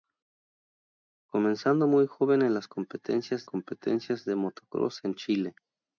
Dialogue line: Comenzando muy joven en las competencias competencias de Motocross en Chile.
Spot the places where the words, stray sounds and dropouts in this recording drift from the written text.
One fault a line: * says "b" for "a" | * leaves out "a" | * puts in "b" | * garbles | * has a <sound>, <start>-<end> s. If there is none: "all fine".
all fine